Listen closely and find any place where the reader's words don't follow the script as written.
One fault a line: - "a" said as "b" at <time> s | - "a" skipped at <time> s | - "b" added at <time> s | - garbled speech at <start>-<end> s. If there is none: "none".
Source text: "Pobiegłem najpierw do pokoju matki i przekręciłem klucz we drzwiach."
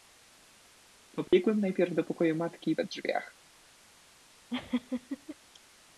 - "przekręciłem klucz" skipped at 2.8 s